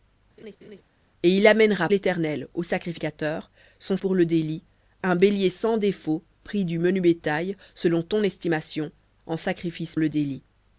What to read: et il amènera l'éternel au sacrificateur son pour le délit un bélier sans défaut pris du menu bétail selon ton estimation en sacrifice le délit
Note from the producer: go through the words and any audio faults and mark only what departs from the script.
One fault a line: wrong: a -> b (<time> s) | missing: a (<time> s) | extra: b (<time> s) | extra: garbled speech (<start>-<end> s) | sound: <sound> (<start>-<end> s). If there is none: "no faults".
sound: laugh (0.4-0.8 s)